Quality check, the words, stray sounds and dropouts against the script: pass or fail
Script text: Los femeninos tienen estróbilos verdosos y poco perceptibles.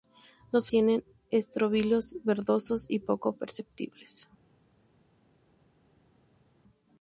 fail